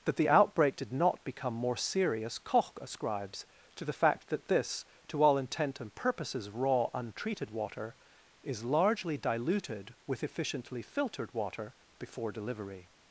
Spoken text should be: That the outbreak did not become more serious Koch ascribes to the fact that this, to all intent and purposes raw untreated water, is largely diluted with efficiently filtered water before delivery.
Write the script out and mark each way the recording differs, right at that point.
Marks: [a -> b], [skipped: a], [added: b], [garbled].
That the outbreak did not become more serious Koch ascribes to the fact that this, to all intent and purposes raw untreated water, is largely diluted with efficiently filtered water before delivery.